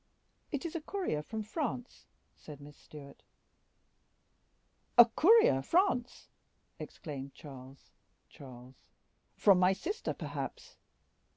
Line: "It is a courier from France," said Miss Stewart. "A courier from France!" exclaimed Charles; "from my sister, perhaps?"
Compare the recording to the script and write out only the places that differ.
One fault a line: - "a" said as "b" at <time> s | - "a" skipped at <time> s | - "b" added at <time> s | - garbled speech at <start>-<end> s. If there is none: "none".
- "from" skipped at 5.6 s
- "Charles" added at 8.3 s